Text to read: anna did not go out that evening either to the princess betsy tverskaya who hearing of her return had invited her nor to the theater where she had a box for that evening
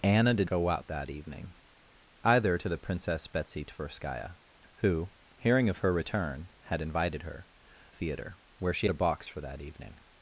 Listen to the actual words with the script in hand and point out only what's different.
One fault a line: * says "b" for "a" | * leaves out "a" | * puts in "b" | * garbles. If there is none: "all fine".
* leaves out "not"
* leaves out "nor to the"
* leaves out "had"